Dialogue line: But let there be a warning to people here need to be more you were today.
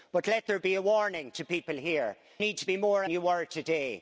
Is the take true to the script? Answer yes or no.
yes